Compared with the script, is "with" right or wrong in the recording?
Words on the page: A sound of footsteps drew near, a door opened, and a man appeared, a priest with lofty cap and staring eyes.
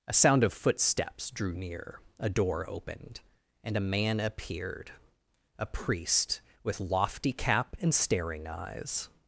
right